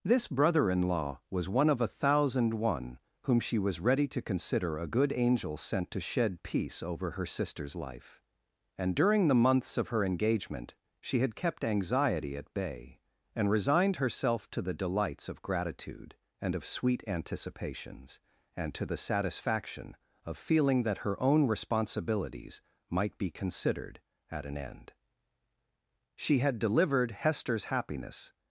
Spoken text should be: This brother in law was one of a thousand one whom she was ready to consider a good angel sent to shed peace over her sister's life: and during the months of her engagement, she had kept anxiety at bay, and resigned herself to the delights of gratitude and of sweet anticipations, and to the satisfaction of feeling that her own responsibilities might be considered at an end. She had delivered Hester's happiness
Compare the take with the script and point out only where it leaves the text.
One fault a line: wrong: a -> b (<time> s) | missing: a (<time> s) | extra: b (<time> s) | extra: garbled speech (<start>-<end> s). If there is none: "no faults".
no faults